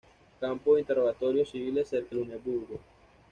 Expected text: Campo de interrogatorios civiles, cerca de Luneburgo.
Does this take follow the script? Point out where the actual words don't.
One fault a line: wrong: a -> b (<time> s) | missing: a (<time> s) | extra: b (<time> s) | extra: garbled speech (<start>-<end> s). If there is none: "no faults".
missing: de (2.1 s)